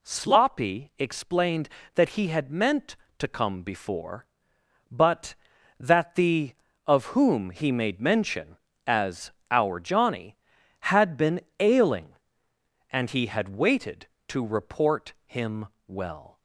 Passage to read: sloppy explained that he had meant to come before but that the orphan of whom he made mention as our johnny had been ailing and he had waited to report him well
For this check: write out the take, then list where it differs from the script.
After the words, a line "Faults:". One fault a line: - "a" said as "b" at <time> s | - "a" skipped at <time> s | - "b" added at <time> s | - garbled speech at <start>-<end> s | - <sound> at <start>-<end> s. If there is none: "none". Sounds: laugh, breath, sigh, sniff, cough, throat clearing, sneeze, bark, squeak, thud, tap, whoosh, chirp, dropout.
sloppy explained that he had meant to come before but that the of whom he made mention as our johnny had been ailing and he had waited to report him well
Faults:
- "orphan" skipped at 6.5 s